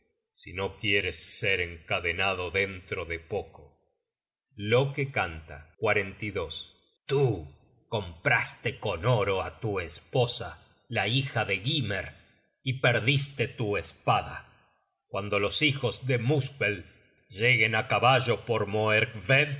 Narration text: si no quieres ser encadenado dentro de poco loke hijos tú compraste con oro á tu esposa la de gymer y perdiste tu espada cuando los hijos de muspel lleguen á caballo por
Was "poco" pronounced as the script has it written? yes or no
yes